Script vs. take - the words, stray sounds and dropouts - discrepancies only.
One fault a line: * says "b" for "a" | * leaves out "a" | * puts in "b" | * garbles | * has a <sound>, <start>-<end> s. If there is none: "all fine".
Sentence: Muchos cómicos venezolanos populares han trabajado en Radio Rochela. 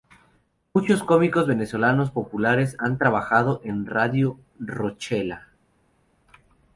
all fine